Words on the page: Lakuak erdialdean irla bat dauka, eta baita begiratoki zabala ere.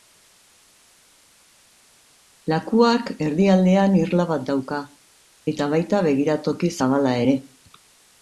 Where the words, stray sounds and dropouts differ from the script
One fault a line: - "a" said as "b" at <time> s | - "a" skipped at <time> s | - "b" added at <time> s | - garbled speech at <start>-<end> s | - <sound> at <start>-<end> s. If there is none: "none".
none